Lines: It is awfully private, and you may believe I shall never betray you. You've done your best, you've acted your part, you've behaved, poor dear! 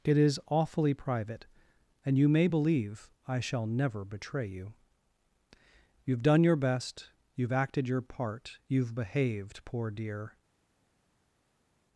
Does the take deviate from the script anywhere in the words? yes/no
no